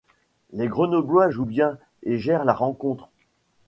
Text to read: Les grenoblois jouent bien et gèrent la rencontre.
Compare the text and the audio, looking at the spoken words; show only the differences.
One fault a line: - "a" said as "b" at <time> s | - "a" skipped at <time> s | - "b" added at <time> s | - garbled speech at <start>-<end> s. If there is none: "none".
none